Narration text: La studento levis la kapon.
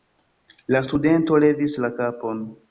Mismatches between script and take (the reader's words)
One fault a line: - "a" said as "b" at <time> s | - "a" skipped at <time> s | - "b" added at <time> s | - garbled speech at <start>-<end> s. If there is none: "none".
none